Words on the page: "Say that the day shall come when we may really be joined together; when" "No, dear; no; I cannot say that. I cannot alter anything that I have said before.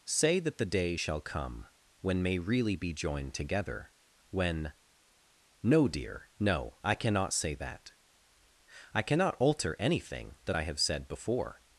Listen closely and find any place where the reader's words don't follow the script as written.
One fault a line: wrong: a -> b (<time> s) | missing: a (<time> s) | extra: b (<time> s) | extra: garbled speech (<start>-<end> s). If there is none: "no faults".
missing: we (2.2 s)